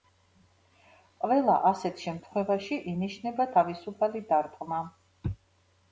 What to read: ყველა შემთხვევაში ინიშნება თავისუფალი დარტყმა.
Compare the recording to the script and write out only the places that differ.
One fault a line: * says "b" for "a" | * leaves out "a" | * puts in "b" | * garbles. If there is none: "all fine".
* puts in "ასეთ"